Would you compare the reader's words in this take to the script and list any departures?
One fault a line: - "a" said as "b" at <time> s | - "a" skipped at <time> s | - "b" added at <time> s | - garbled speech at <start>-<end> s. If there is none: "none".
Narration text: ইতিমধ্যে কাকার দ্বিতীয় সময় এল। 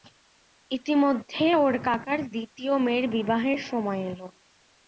- "ওর" added at 1.5 s
- "মেয়ের বিবাহের" added at 2.8 s